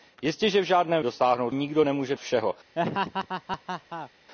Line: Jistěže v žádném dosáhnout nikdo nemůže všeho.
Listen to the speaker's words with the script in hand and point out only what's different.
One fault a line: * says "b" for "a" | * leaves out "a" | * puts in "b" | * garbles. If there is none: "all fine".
all fine